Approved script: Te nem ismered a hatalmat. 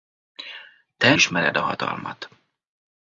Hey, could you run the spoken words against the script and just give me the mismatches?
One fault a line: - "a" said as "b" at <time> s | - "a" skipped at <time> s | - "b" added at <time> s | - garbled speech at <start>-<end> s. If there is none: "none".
- "nem" skipped at 1.1 s